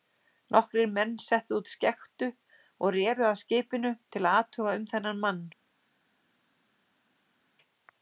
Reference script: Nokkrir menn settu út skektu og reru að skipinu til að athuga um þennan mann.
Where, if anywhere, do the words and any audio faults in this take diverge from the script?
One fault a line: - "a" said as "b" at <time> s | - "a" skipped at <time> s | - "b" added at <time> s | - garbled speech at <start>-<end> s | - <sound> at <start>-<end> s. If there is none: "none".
none